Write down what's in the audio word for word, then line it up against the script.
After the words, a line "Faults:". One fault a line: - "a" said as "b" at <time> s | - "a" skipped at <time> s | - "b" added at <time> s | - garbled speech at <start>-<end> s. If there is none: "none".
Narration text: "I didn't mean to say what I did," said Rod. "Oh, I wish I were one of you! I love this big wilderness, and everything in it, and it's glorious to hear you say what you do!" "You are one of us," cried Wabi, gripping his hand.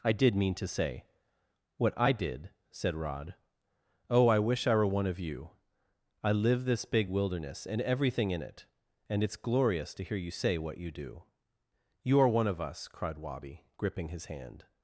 "I did mean to say what I did," said Rod. "Oh, I wish I were one of you! I live this big wilderness, and everything in it, and it's glorious to hear you say what you do!" "You are one of us," cried Wabi, gripping his hand.
Faults:
- "didn't" said as "did" at 0.1 s
- "love" said as "live" at 6.3 s